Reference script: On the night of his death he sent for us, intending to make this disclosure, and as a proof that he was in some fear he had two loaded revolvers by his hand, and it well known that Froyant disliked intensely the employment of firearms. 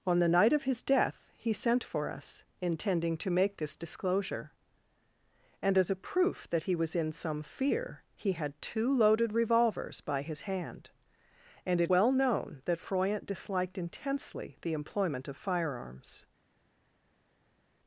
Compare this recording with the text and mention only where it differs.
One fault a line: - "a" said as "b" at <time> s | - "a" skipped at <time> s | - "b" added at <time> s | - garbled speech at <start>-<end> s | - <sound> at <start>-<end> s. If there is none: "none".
none